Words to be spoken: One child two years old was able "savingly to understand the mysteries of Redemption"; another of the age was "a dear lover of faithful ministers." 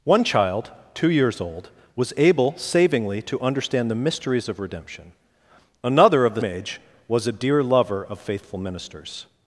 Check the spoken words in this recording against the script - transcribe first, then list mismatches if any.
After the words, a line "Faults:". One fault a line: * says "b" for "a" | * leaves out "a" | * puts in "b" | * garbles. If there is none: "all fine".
One child two years old was able "savingly to understand the mysteries of Redemption"; another of the age was "a dear lover of faithful ministers."
Faults:
all fine